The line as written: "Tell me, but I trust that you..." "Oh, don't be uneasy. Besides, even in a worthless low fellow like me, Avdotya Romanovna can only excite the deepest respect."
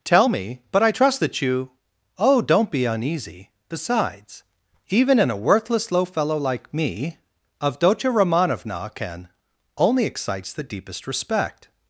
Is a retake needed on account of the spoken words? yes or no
yes